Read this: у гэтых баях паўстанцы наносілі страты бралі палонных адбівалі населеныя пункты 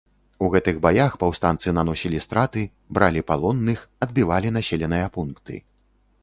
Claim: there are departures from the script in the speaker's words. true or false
false